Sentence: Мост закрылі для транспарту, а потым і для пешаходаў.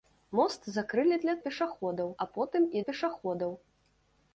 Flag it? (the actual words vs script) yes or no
yes